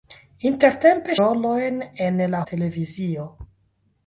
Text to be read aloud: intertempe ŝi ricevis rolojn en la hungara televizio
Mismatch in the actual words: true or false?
true